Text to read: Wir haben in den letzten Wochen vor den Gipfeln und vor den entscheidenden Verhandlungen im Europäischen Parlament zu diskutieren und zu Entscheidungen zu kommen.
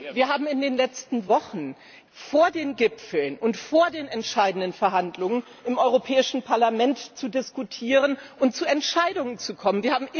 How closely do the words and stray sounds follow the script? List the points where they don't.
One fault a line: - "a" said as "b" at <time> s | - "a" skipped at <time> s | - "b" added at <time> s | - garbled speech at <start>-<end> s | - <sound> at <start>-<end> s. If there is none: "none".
none